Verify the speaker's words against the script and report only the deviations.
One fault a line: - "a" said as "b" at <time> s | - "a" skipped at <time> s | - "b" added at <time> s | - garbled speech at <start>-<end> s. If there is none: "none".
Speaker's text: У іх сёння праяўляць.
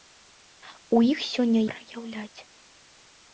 none